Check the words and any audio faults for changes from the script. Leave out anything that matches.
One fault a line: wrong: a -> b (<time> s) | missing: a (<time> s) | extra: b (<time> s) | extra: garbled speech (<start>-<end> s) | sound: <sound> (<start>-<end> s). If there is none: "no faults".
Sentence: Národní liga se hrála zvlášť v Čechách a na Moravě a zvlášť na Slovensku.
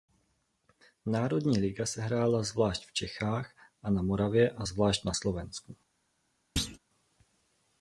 sound: thud (6.6-6.8 s)